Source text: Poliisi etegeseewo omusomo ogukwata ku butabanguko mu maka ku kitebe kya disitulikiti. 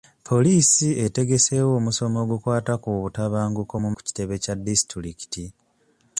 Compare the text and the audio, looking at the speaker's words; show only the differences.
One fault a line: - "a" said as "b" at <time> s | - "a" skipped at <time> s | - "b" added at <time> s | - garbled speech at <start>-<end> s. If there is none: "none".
- "maka" skipped at 3.9 s